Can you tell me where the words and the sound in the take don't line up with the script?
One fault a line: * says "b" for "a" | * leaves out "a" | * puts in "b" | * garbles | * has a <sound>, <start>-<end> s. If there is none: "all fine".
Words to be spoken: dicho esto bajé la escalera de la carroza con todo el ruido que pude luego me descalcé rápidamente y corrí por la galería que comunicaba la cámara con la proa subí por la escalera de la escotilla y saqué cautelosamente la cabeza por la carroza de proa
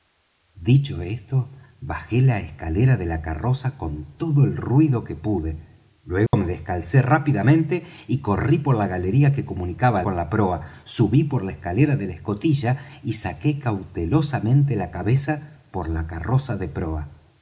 * has a dropout, 6.3-6.3 s
* leaves out "la cámara"